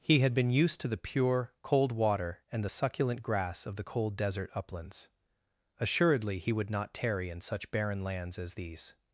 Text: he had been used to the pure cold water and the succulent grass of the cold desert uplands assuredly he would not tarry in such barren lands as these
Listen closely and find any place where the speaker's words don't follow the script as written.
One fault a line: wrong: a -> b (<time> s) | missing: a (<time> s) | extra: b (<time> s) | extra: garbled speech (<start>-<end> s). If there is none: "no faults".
no faults